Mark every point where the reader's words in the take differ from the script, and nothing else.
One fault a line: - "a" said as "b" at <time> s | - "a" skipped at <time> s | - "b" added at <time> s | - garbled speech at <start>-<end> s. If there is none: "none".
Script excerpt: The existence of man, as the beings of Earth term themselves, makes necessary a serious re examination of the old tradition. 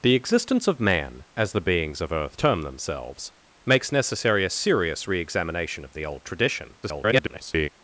- garbled speech at 6.8-7.7 s